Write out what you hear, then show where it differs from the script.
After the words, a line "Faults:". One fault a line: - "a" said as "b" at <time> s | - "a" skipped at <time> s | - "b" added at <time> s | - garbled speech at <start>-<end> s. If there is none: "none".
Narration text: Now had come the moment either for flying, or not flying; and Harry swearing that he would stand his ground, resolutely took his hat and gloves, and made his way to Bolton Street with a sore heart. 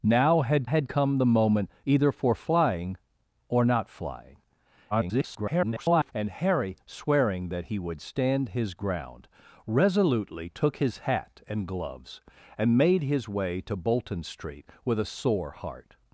Now had had come the moment either for flying, or not flying; [garbled] and Harry swearing that he would stand his ground, resolutely took his hat and gloves, and made his way to Bolton Street with a sore heart.
Faults:
- "had" added at 0.6 s
- garbled speech at 4.9-6.1 s